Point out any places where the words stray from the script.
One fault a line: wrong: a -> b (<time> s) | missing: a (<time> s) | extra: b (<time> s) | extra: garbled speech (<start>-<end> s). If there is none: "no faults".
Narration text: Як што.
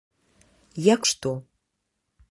no faults